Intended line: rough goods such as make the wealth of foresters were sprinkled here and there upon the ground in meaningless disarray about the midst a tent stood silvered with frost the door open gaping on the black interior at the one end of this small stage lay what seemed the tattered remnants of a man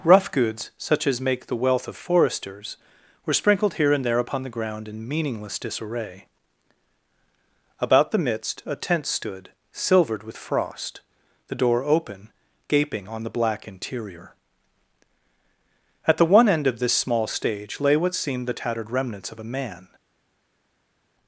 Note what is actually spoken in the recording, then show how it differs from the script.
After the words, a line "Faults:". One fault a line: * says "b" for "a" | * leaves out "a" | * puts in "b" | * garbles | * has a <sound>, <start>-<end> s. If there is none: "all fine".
rough goods such as make the wealth of foresters were sprinkled here and there upon the ground in meaningless disarray about the midst a tent stood silvered with frost the door open gaping on the black interior at the one end of this small stage lay what seemed the tattered remnants of a man
Faults:
all fine